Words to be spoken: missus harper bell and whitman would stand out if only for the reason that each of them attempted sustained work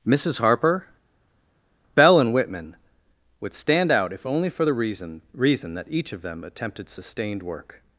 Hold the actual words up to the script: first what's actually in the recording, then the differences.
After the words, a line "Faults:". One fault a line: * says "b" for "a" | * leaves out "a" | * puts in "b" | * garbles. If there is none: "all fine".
missus harper bell and whitman would stand out if only for the reason reason that each of them attempted sustained work
Faults:
* puts in "reason"